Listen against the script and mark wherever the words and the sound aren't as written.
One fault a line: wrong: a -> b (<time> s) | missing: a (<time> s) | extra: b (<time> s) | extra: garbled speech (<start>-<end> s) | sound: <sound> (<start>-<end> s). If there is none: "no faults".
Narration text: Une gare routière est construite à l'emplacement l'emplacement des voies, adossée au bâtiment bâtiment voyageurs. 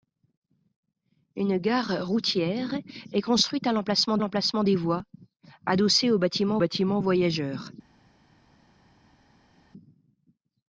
no faults